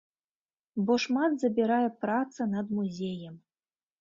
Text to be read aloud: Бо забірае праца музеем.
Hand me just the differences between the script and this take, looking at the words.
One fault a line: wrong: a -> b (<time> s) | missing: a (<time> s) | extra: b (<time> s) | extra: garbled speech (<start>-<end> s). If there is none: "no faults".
extra: шмат (1.0 s)
extra: над (2.6 s)